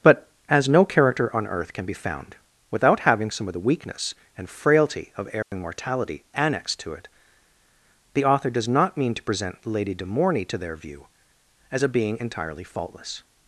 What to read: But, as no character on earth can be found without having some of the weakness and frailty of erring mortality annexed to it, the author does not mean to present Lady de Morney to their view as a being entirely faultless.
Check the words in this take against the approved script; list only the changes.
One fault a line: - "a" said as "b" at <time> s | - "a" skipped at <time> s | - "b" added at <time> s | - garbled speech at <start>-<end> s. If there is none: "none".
none